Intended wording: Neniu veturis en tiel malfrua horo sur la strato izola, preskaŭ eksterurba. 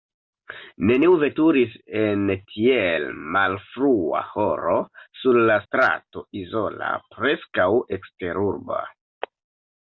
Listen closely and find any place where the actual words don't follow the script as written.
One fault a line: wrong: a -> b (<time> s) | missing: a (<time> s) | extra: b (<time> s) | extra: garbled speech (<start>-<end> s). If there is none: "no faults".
no faults